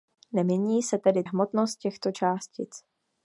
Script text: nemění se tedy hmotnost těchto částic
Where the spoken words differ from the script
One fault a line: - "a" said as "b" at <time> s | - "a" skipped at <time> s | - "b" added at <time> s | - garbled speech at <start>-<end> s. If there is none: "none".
none